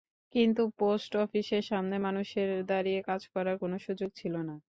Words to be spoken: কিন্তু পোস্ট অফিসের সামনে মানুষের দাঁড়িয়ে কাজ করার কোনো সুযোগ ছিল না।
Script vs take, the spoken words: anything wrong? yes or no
no